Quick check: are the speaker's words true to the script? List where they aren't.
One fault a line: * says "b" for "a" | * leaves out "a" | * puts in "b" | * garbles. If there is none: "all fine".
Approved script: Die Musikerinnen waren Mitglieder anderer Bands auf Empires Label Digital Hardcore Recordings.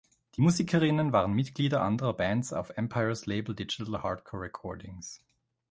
all fine